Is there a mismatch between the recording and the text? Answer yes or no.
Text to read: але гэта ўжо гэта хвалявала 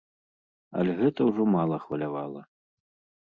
yes